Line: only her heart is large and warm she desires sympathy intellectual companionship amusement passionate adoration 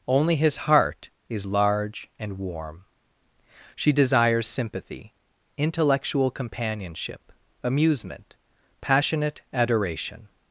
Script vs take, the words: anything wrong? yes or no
yes